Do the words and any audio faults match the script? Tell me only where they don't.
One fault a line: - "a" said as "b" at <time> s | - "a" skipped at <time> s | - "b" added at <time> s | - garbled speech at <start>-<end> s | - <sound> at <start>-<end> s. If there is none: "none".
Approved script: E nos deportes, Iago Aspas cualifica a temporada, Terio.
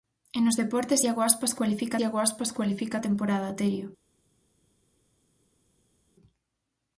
- "Iago Aspas cualifica" added at 2.0 s